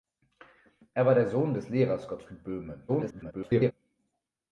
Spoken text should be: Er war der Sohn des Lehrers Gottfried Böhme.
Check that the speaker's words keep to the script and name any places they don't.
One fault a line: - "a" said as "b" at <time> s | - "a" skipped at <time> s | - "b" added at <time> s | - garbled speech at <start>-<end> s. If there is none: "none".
- garbled speech at 2.9-3.7 s